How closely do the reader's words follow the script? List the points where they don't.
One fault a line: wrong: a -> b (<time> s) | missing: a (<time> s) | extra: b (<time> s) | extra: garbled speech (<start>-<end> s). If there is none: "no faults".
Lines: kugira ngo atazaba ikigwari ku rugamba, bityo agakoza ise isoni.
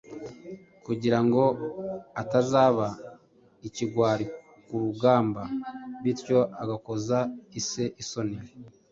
no faults